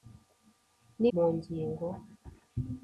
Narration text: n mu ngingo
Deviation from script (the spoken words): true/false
false